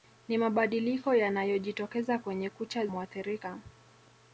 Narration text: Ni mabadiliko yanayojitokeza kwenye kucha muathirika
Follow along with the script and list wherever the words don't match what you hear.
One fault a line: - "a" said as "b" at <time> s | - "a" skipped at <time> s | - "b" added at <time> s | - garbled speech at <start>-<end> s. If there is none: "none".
none